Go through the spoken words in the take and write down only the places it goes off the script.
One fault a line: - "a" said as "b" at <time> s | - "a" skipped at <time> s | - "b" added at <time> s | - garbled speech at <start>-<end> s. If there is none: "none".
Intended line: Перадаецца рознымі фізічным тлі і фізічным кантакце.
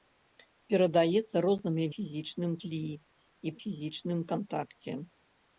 none